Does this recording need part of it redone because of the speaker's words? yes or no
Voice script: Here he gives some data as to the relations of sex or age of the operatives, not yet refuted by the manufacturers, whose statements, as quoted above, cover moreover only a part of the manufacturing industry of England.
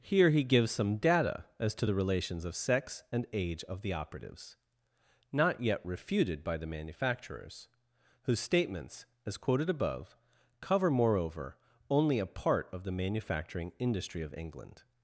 yes